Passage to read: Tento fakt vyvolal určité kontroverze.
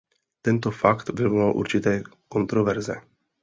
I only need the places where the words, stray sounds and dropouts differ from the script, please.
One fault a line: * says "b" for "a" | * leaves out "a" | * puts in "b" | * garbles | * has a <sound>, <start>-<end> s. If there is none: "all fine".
all fine